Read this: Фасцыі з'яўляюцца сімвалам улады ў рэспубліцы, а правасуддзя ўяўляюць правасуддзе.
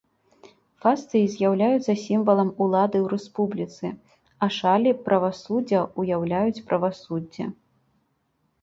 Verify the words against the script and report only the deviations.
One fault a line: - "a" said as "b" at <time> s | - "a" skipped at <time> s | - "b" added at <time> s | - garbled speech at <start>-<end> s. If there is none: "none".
- "шалі" added at 4.6 s